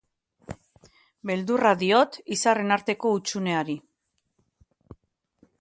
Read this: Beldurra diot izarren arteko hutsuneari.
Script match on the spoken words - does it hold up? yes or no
yes